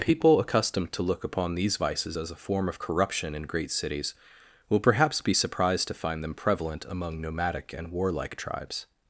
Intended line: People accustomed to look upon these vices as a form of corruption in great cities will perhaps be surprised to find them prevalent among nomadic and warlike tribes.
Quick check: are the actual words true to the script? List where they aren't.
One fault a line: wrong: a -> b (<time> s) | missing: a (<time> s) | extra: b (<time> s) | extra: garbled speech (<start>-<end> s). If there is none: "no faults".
no faults